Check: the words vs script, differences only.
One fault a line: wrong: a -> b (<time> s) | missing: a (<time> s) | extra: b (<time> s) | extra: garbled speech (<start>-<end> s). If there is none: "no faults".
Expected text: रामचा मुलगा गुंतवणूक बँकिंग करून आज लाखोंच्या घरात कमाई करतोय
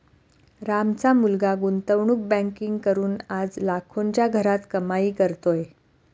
no faults